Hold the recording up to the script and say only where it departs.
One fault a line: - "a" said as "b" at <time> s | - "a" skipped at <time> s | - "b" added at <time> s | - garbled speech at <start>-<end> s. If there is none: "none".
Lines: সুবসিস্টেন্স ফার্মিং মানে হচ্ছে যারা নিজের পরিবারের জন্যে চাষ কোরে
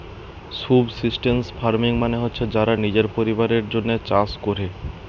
none